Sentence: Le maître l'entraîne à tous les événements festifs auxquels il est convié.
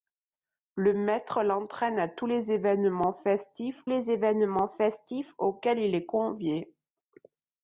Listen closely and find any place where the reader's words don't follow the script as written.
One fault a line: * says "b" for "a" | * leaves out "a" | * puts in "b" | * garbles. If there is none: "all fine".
* puts in "les événements festifs"